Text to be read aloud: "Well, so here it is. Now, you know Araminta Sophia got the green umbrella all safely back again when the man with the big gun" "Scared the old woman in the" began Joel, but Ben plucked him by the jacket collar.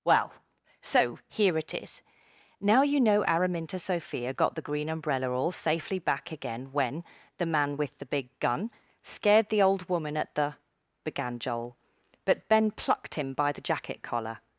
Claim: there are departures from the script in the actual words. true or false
true